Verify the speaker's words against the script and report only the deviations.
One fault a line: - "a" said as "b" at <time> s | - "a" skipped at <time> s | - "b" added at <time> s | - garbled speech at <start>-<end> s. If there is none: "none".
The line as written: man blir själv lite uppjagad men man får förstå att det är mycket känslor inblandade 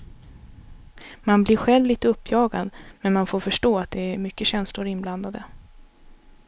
none